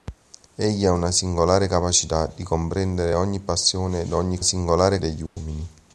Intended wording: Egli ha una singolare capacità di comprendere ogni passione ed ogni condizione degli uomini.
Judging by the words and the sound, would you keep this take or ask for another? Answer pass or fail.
fail